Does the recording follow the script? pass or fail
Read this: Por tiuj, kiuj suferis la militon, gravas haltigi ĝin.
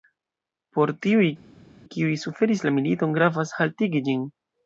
pass